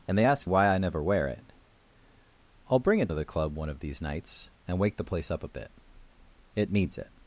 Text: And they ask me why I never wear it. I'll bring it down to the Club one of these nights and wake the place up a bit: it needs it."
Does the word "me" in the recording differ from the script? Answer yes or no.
yes